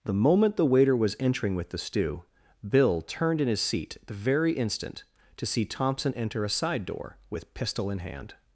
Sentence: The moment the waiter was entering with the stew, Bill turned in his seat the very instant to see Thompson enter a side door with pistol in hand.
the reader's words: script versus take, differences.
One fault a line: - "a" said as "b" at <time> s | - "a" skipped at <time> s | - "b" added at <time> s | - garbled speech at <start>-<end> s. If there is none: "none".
none